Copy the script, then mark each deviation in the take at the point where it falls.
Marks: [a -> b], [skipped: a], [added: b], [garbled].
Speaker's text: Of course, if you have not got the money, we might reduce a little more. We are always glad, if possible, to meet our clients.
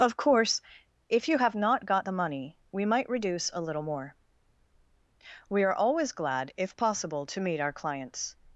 Of course, if you have not got the money, we might reduce a little more. We are always glad, if possible, to meet our clients.